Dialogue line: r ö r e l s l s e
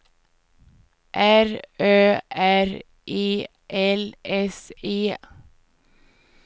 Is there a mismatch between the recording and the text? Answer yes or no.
yes